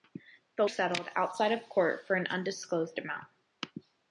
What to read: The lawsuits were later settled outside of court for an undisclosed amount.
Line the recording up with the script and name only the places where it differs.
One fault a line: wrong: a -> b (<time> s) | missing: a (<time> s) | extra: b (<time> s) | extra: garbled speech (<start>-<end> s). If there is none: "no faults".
missing: lawsuits were later (0.7 s)